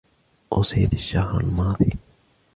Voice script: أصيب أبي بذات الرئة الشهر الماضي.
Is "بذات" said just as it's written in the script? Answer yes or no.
no